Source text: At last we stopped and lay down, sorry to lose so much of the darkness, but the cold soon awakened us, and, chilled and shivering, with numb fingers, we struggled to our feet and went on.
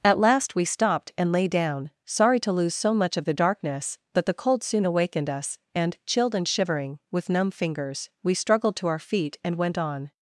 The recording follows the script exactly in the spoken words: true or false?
true